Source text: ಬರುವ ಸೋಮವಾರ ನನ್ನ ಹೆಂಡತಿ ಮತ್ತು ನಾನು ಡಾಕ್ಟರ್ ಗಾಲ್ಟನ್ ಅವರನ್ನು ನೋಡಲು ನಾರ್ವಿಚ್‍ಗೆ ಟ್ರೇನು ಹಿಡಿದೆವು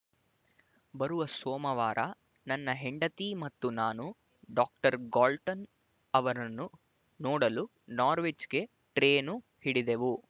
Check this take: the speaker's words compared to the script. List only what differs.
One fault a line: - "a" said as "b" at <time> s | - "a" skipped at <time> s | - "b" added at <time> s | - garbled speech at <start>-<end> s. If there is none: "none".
none